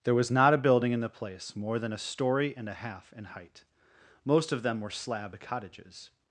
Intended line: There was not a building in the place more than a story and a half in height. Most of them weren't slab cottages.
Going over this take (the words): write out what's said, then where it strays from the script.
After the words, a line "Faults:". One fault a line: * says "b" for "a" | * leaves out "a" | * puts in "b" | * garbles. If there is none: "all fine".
There was not a building in the place more than a story and a half in height. Most of them were slab cottages.
Faults:
* says "were" for "weren't"